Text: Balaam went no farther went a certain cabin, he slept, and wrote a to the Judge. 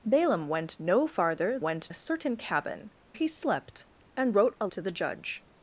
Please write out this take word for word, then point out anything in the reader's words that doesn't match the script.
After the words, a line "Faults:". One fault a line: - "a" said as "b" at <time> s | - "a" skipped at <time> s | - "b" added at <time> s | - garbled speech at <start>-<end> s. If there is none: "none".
Balaam went no farther went a certain cabin, he slept, and wrote a to the Judge.
Faults:
none